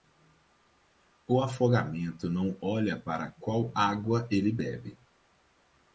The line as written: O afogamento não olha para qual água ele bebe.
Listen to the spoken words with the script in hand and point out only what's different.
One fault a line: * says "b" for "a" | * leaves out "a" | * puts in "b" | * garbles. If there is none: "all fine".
all fine